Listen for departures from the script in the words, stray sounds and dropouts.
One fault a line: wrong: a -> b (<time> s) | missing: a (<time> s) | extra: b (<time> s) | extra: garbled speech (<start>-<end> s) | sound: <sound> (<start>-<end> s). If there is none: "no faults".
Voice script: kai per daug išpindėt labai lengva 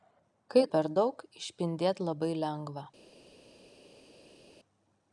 no faults